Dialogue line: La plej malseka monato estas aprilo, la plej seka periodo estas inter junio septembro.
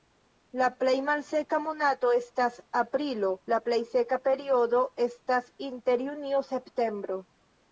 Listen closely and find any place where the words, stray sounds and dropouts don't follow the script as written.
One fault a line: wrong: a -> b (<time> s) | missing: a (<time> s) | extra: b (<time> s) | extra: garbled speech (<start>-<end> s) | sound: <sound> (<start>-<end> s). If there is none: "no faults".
no faults